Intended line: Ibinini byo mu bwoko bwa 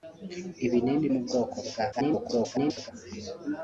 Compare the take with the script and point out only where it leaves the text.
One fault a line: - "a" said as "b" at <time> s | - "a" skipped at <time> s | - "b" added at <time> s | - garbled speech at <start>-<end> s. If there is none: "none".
- "byo" skipped at 1.1 s
- garbled speech at 1.9-2.9 s